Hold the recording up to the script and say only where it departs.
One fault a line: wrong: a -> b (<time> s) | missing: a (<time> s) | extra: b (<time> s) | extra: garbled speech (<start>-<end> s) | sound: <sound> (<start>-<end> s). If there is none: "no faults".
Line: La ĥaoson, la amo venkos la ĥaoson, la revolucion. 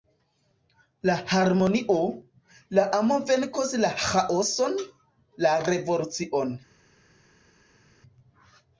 wrong: ĥaoson -> harmonio (1.3 s)